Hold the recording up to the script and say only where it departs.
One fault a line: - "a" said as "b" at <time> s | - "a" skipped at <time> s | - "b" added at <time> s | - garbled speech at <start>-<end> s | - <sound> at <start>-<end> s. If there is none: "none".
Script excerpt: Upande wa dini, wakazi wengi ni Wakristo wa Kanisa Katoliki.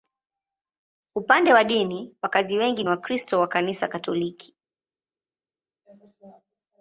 none